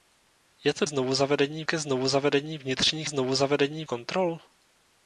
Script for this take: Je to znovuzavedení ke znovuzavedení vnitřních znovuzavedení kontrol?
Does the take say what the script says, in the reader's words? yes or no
yes